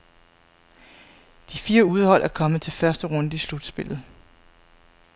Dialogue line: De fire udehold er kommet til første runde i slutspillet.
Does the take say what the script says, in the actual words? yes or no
yes